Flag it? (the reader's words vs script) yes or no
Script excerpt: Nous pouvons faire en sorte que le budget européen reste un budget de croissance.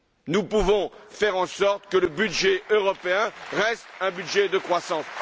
no